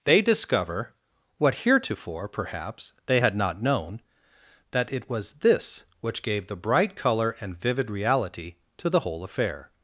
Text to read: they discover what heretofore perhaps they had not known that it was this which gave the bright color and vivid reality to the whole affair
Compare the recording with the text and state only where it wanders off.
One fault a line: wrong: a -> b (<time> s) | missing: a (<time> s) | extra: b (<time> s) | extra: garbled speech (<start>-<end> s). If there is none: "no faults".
no faults